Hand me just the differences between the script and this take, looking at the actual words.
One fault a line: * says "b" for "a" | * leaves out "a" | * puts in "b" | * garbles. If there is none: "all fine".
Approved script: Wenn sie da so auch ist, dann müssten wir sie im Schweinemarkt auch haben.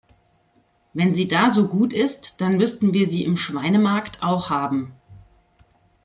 * says "gut" for "auch"